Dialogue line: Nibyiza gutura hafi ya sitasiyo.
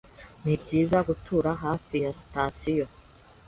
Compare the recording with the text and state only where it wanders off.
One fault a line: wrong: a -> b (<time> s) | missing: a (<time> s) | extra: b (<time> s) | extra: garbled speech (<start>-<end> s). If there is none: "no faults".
no faults